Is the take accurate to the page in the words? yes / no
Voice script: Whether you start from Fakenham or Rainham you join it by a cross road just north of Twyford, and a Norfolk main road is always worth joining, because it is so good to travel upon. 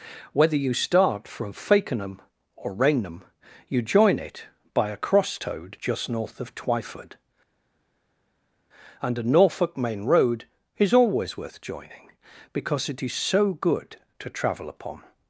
no